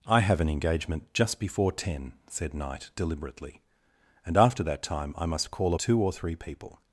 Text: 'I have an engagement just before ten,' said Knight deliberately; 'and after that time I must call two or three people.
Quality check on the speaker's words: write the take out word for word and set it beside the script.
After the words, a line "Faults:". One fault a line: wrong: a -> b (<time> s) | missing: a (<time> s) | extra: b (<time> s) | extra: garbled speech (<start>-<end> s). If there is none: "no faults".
'I have an engagement just before ten,' said Knight deliberately; 'and after that time I must call two or three people.
Faults:
no faults